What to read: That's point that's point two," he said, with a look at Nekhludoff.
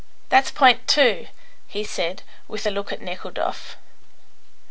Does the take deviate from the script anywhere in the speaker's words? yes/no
yes